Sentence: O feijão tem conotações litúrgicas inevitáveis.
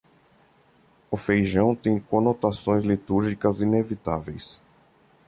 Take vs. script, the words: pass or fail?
pass